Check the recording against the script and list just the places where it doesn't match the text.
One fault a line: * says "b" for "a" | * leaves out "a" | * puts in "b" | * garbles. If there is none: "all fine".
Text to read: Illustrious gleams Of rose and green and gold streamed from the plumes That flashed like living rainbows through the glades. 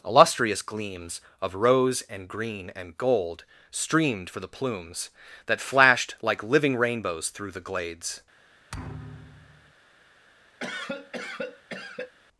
* says "for" for "from"